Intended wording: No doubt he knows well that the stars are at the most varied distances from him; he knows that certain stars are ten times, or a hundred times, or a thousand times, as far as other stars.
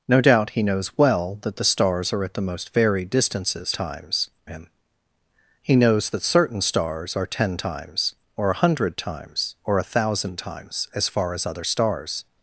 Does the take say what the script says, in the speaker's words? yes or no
no